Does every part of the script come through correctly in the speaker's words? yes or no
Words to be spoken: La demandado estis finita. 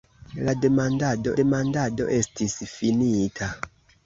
no